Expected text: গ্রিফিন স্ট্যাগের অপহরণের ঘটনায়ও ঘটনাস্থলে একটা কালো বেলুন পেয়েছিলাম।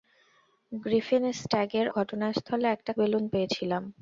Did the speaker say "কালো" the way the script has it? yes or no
no